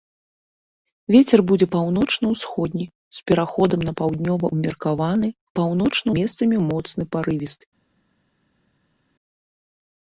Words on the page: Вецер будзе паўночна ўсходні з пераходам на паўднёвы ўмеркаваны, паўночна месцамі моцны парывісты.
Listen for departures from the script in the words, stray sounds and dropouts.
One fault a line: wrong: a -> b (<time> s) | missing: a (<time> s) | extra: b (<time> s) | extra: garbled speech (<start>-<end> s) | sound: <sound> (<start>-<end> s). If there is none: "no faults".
no faults